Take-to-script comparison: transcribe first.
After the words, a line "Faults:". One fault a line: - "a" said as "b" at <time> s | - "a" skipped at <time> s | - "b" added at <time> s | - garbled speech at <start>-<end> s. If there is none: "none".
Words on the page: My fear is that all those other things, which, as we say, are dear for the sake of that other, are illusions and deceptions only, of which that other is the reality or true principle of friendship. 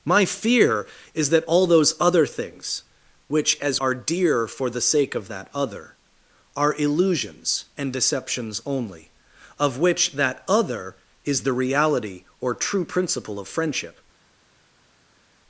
My fear is that all those other things, which, as are dear for the sake of that other, are illusions and deceptions only, of which that other is the reality or true principle of friendship.
Faults:
- "we say" skipped at 3.8 s